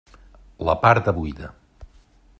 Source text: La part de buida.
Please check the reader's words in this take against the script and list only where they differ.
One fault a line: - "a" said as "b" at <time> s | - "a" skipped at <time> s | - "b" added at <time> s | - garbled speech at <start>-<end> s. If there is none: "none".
none